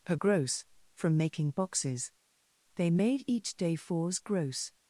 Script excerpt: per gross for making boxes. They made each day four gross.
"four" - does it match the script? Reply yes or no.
no